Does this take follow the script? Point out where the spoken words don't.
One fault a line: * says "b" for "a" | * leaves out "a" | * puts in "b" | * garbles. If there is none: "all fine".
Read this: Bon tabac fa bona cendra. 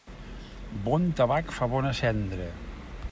all fine